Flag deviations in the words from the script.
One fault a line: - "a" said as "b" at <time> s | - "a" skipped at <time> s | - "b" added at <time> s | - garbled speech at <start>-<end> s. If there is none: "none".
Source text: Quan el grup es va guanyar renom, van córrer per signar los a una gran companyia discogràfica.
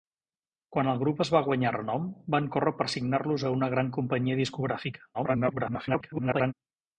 - garbled speech at 5.1-6.5 s